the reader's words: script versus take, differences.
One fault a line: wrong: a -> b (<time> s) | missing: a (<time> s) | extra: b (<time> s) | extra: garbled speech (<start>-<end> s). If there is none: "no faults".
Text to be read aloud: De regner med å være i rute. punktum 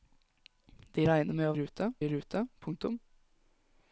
wrong: være -> rute (1.6 s)